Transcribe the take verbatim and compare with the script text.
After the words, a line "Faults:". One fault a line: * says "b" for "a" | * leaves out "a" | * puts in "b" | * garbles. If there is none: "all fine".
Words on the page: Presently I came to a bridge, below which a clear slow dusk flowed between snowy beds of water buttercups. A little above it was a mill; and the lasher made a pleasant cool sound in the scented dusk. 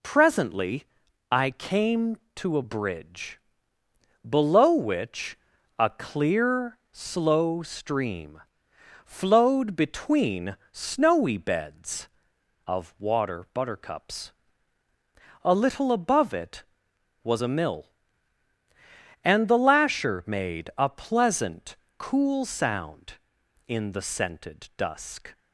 Presently I came to a bridge, below which a clear slow stream flowed between snowy beds of water buttercups. A little above it was a mill; and the lasher made a pleasant cool sound in the scented dusk.
Faults:
* says "stream" for "dusk"